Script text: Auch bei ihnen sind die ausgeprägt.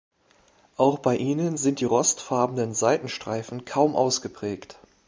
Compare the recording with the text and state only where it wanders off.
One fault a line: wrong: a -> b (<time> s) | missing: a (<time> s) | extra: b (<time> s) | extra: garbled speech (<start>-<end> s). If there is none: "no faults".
extra: rostfarbenen Seitenstreifen kaum (1.8 s)